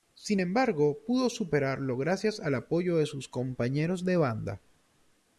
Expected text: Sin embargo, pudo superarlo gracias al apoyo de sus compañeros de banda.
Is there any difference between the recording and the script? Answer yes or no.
no